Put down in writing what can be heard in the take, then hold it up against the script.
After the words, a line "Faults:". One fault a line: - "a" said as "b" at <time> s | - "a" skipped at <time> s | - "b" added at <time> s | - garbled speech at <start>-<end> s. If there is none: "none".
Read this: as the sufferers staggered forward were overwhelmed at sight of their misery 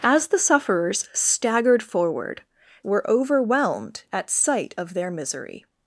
as the sufferers staggered forward were overwhelmed at sight of their misery
Faults:
none